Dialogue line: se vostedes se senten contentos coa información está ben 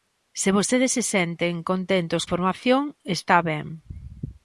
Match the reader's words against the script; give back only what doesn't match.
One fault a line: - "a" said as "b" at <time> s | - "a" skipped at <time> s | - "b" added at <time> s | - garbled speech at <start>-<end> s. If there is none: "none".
- "coa" skipped at 2.2 s